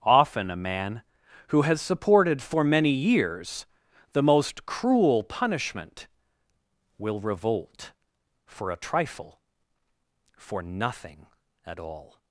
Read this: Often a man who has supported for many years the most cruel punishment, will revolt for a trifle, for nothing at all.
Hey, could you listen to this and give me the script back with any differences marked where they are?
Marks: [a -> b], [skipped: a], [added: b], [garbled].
Often a man who has supported for many years the most cruel punishment, will revolt for a trifle, for nothing at all.